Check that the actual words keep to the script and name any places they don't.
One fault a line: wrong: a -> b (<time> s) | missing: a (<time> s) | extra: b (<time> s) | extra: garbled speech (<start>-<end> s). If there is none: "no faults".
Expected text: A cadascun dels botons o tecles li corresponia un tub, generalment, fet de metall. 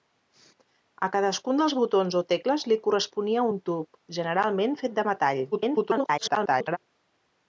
extra: garbled speech (5.5-6.8 s)